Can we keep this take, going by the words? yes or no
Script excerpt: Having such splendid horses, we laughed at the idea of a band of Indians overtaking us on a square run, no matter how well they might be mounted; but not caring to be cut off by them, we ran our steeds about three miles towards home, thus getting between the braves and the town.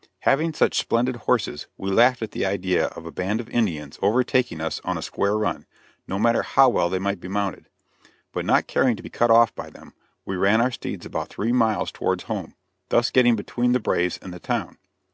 yes